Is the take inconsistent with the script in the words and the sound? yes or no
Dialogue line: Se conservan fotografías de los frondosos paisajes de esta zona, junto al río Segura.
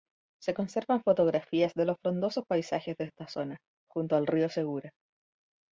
no